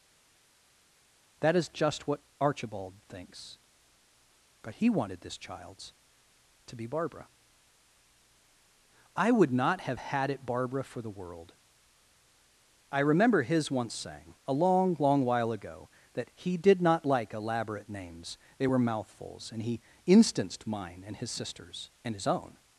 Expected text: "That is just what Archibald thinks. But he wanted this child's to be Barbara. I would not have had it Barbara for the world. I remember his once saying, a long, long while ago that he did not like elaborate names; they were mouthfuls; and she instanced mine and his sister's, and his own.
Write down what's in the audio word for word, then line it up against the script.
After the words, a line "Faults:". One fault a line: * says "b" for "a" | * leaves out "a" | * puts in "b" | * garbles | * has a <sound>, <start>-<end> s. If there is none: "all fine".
"That is just what Archibald thinks. But he wanted this child's to be Barbara. I would not have had it Barbara for the world. I remember his once saying, a long, long while ago that he did not like elaborate names; they were mouthfuls; and he instanced mine and his sister's, and his own.
Faults:
* says "he" for "she"